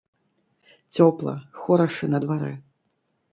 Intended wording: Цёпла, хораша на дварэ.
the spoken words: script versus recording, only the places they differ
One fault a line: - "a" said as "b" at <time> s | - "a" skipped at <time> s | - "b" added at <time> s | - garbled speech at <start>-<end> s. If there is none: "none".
none